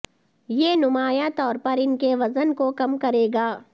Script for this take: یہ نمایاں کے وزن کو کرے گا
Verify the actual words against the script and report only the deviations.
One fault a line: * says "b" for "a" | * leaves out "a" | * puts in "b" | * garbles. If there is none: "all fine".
* puts in "طور پر ان"
* puts in "کم"